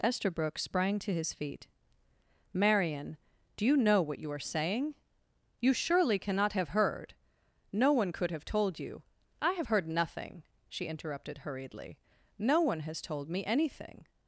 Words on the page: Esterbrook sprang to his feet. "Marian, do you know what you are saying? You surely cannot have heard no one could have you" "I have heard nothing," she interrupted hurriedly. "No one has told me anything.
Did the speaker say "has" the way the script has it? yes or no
yes